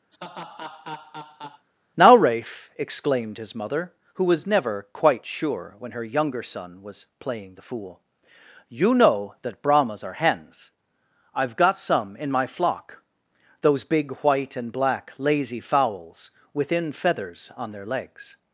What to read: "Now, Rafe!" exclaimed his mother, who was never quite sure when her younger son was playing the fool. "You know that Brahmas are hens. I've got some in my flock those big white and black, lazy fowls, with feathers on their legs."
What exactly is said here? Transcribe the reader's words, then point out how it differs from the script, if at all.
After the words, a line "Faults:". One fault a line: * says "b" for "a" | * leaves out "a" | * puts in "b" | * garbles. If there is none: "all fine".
"Now, Rafe!" exclaimed his mother, who was never quite sure when her younger son was playing the fool. "You know that Brahmas are hens. I've got some in my flock those big white and black, lazy fowls, within feathers on their legs."
Faults:
* says "within" for "with"